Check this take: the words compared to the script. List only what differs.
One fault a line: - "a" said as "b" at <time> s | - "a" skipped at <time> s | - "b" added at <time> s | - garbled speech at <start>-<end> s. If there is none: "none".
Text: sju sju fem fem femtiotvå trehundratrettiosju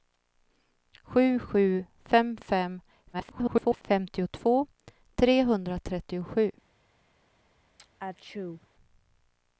- garbled speech at 3.1-3.8 s